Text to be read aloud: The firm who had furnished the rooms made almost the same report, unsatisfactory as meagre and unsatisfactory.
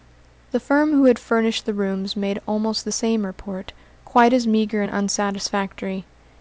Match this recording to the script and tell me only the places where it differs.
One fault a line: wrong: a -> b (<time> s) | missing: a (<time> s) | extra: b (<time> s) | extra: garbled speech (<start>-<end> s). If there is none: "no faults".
wrong: unsatisfactory -> quite (4.1 s)